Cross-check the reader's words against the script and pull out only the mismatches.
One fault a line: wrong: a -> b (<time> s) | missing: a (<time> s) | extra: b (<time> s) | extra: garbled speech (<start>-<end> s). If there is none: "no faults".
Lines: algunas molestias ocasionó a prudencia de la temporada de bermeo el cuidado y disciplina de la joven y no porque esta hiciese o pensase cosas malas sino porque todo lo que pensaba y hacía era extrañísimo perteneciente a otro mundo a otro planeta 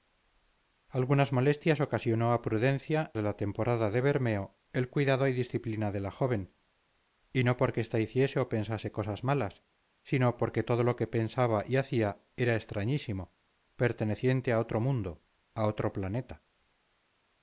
no faults